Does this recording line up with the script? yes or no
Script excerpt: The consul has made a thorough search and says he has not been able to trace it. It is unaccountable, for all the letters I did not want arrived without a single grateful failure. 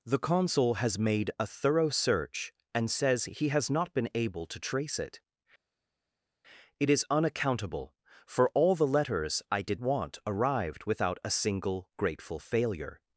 no